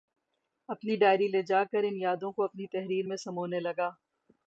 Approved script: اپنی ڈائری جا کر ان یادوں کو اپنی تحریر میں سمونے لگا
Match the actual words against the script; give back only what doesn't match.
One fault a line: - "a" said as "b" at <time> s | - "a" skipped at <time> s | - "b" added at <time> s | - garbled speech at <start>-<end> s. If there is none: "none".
- "لے" added at 1.3 s